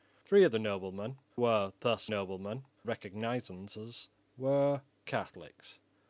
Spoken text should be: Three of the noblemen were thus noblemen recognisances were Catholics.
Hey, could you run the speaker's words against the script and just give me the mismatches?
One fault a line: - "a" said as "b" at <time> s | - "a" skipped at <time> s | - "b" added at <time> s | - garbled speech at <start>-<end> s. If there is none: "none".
none